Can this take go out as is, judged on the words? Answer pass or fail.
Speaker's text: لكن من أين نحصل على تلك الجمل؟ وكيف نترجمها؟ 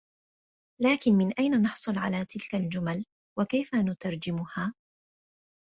pass